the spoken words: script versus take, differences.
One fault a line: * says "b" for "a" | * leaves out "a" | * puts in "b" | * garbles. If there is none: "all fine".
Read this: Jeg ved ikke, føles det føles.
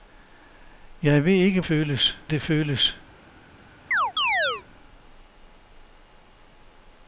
all fine